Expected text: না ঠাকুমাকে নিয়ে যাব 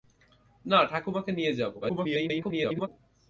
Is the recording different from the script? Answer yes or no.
yes